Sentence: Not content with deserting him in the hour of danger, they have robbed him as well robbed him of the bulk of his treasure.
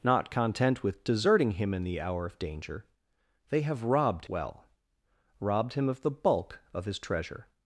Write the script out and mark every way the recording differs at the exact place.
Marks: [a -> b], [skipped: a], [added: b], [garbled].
Not content with deserting him in the hour of danger, they have robbed [skipped: him as] well robbed him of the bulk of his treasure.